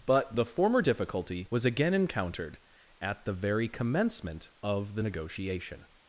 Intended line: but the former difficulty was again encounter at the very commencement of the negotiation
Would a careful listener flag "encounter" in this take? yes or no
yes